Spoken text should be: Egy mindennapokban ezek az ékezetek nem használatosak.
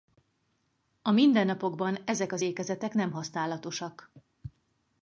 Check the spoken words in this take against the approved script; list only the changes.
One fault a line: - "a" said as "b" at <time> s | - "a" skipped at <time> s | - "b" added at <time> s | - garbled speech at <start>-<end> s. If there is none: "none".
- "Egy" said as "A" at 1.0 s